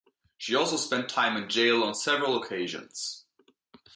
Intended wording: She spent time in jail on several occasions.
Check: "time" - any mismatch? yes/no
no